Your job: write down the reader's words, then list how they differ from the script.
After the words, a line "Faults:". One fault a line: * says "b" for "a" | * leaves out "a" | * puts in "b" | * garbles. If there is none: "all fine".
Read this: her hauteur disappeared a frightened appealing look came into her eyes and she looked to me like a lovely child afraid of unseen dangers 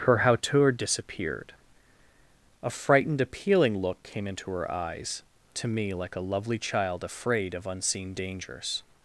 her hauteur disappeared a frightened appealing look came into her eyes to me like a lovely child afraid of unseen dangers
Faults:
* leaves out "and she looked"